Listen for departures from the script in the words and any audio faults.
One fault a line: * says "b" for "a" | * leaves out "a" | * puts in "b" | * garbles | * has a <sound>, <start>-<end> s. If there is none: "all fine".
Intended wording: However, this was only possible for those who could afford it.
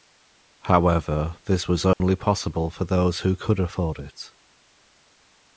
* has a dropout, 1.9-2.0 s